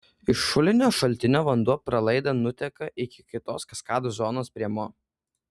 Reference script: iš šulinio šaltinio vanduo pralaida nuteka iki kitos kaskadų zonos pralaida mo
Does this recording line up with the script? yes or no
no